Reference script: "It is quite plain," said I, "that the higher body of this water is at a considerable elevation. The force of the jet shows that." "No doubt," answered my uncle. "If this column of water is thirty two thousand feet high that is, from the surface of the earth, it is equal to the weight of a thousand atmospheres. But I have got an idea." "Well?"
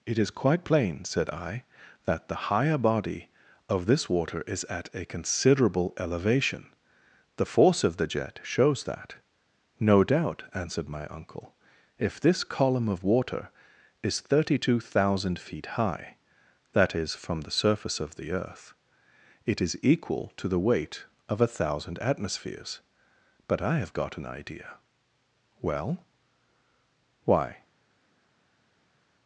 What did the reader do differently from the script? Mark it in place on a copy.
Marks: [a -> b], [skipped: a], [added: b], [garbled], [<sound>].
"It is quite plain," said I, "that the higher body of this water is at a considerable elevation. The force of the jet shows that." "No doubt," answered my uncle. "If this column of water is thirty two thousand feet high that is, from the surface of the earth, it is equal to the weight of a thousand atmospheres. But I have got an idea." "Well?" [added: Why]